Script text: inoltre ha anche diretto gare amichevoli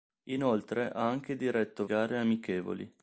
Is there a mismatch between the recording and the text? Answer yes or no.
no